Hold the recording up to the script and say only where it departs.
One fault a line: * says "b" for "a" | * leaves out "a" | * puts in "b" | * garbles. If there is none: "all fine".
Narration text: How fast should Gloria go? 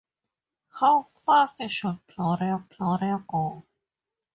* puts in "Gloria"